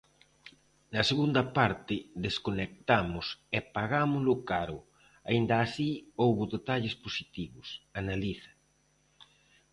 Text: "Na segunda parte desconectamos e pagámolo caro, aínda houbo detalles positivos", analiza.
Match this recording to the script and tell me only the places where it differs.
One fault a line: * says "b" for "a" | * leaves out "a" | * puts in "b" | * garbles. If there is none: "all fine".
* puts in "así"